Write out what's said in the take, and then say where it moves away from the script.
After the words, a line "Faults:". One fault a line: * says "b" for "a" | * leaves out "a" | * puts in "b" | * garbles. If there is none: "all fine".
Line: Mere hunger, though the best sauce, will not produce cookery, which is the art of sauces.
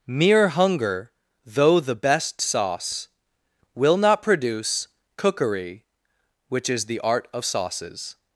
Mere hunger, though the best sauce, will not produce cookery, which is the art of sauces.
Faults:
all fine